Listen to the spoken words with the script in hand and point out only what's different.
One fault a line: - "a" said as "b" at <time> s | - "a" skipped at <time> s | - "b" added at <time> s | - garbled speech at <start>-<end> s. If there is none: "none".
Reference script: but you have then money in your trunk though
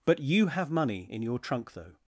- "then" skipped at 0.7 s